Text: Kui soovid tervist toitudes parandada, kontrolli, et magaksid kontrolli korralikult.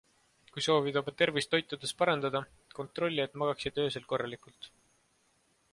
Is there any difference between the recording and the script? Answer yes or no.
yes